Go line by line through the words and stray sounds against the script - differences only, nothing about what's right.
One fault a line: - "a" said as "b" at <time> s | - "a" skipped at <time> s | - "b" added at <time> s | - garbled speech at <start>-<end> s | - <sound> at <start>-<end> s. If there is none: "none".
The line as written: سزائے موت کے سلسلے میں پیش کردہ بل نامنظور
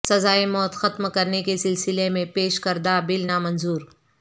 - "ختم کرنے" added at 0.7 s